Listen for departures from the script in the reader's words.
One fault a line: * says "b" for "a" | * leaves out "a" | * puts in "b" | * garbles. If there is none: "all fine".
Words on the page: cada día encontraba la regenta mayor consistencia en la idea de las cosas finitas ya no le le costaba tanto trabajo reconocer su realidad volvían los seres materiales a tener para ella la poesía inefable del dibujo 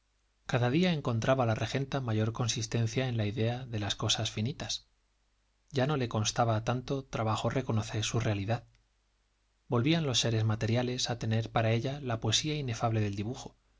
* leaves out "le"